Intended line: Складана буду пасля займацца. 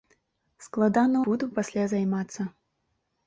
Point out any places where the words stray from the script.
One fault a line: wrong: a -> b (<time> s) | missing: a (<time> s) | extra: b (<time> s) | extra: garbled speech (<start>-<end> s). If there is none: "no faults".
no faults